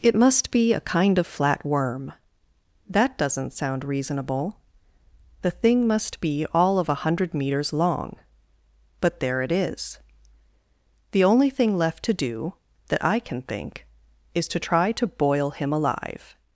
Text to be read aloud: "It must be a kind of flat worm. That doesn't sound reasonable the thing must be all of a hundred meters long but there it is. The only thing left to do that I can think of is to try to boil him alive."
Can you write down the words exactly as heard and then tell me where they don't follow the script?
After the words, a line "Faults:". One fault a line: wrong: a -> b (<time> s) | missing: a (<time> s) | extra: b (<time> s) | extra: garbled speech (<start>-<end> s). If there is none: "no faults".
"It must be a kind of flat worm. That doesn't sound reasonable the thing must be all of a hundred meters long but there it is. The only thing left to do that I can think is to try to boil him alive."
Faults:
missing: of (13.8 s)